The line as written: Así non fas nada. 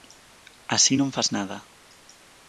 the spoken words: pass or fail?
pass